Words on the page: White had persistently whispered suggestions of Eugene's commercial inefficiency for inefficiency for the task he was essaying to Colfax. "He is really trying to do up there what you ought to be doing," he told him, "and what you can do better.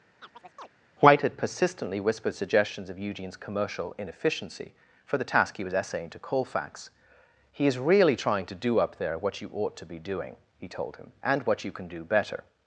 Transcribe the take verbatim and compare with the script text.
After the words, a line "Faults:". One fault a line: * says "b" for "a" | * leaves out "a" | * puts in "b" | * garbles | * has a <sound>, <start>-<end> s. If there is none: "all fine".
White had persistently whispered suggestions of Eugene's commercial inefficiency for the task he was essaying to Colfax. "He is really trying to do up there what you ought to be doing," he told him, "and what you can do better.
Faults:
* has a chirp, 0.2-0.7 s
* leaves out "inefficiency for"